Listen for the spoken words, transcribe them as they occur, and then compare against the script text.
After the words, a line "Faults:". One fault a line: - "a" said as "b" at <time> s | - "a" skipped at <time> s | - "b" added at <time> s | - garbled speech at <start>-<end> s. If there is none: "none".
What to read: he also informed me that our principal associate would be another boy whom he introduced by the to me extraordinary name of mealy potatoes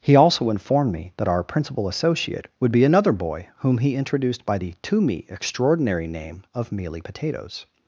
he also informed me that our principal associate would be another boy whom he introduced by the to me extraordinary name of mealy potatoes
Faults:
none